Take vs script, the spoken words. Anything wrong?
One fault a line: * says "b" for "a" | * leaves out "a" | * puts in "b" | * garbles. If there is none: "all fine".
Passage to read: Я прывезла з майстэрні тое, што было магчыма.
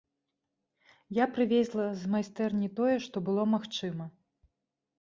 all fine